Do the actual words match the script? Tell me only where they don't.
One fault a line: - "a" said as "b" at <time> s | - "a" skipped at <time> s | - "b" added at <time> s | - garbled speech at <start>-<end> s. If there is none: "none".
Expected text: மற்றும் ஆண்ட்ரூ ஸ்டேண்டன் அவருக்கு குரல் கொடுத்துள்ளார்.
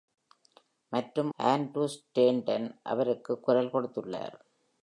none